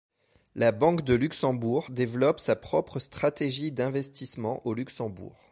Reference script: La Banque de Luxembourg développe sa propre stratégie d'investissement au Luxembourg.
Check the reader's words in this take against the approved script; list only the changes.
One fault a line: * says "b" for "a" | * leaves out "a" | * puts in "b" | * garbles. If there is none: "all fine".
all fine